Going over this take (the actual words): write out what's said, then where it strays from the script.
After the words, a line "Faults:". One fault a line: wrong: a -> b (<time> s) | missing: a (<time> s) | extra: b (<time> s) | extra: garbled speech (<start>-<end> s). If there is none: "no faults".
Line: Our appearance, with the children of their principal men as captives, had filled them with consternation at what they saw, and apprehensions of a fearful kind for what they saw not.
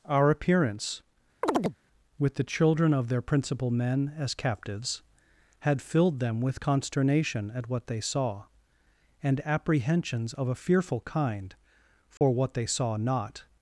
Our appearance, with the children of their principal men as captives, had filled them with consternation at what they saw, and apprehensions of a fearful kind for what they saw not.
Faults:
no faults